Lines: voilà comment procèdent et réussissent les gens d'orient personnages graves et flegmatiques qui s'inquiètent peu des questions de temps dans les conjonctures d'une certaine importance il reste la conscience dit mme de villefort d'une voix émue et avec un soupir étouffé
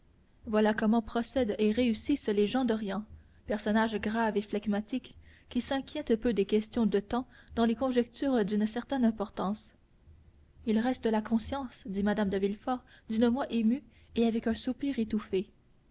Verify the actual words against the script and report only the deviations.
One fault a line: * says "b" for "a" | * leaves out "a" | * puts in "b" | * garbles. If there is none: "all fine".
all fine